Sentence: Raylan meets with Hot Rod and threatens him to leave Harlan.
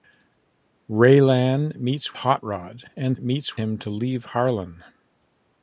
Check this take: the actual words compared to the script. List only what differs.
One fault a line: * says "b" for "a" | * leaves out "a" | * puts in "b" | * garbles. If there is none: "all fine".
* leaves out "with"
* says "meets" for "threatens"